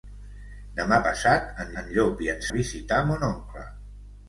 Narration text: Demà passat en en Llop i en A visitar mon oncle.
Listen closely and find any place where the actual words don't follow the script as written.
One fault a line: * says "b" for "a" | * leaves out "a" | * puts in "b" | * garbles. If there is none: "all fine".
all fine